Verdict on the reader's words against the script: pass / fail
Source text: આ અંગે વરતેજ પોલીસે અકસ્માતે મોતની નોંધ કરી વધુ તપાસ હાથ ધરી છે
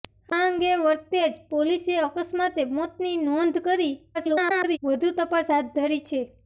fail